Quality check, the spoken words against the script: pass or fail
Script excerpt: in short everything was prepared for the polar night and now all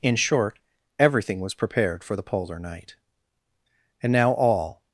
pass